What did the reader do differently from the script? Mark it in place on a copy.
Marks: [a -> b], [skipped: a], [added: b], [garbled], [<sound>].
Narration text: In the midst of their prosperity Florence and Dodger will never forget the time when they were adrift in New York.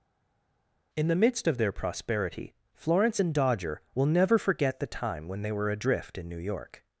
In the midst of their prosperity Florence and Dodger will never forget the time when they were adrift in New York.